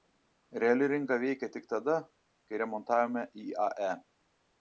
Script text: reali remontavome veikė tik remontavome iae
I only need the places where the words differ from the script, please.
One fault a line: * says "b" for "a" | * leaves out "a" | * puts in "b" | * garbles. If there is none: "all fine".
* says "rinka" for "remontavome"
* puts in "tada kai"